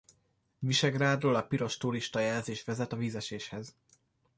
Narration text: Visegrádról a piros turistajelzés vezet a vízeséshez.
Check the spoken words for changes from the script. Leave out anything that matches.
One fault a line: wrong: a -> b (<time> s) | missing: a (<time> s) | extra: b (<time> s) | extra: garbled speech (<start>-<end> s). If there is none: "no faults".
no faults